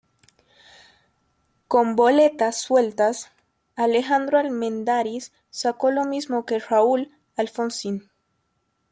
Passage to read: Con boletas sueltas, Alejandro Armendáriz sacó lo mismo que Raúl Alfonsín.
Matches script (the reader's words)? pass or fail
pass